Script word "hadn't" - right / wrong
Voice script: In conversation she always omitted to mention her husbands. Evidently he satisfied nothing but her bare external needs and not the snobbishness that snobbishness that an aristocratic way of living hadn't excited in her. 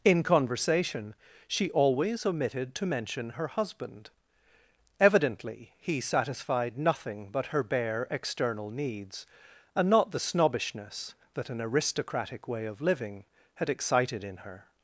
wrong